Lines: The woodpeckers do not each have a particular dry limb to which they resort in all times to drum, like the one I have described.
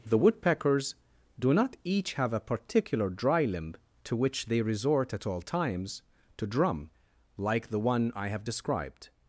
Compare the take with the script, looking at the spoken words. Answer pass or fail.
fail